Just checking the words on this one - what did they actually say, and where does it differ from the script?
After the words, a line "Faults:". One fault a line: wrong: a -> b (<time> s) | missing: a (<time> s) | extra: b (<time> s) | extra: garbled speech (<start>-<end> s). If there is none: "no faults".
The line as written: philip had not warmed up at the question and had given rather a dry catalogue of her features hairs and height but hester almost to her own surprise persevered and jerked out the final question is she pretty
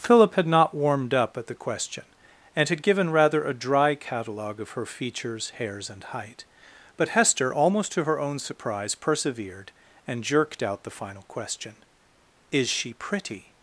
philip had not warmed up at the question and had given rather a dry catalogue of her features hairs and height but hester almost to her own surprise persevered and jerked out the final question is she pretty
Faults:
no faults